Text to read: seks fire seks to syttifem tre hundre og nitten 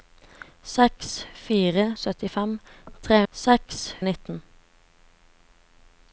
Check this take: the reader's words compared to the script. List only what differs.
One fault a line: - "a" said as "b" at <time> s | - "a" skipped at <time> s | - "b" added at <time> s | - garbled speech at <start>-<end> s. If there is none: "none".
- "seks to" skipped at 1.8 s
- "hundre" said as "seks" at 3.3 s